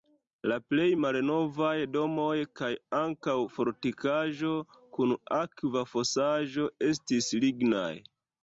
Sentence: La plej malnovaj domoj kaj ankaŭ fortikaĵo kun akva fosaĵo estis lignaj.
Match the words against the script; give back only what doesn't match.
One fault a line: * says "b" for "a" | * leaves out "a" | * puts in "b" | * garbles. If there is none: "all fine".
all fine